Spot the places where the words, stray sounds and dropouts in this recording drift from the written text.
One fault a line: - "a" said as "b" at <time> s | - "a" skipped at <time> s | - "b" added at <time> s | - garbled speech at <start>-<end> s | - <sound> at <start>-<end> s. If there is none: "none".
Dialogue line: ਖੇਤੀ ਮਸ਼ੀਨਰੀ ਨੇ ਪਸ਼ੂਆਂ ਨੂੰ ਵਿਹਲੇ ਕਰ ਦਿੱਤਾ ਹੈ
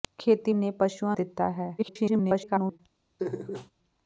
- "ਮਸ਼ੀਨਰੀ" skipped at 0.5 s
- "ਨੂੰ ਵਿਹਲੇ ਕਰ" skipped at 1.1 s
- garbled speech at 1.8-2.8 s
- laugh at 3.2-3.7 s